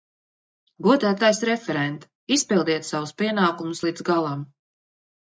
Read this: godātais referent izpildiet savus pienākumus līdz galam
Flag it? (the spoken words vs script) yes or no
no